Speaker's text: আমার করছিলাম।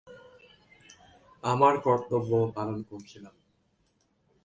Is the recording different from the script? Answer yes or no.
yes